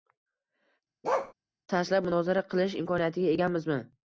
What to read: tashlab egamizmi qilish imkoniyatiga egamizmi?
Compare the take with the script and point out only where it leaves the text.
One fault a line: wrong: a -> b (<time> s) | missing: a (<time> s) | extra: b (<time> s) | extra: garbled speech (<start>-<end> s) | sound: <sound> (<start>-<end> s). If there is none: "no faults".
sound: bark (1.0-1.3 s)
wrong: egamizmi -> munozara (2.1 s)